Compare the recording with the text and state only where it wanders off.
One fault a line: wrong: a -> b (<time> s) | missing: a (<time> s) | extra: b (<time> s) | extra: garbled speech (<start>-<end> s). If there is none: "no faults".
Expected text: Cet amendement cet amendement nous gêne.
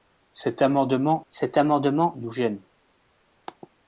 no faults